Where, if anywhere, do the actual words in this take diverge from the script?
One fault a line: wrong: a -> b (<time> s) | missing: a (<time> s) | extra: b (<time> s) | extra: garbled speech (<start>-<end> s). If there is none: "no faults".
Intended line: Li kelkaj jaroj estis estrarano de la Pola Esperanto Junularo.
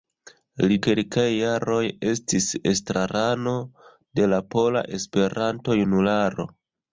no faults